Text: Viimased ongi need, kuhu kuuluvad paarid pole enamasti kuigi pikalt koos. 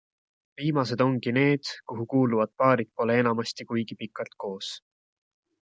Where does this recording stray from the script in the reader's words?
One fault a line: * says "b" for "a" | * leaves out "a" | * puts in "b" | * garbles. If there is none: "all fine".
all fine